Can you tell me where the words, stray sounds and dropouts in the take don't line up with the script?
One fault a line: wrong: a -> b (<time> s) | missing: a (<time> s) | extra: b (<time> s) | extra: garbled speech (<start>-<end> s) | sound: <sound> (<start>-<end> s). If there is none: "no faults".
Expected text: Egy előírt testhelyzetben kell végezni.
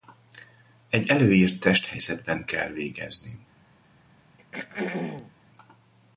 sound: throat clearing (4.4-5.3 s)